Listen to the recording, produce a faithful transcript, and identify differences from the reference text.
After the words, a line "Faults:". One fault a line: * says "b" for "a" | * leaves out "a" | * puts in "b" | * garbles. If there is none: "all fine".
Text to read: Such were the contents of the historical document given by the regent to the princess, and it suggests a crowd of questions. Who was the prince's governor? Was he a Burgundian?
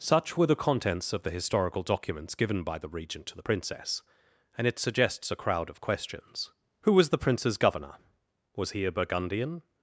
Such were the contents of the historical documents given by the regent to the princess, and it suggests a crowd of questions. Who was the prince's governor? Was he a Burgundian?
Faults:
* says "documents" for "document"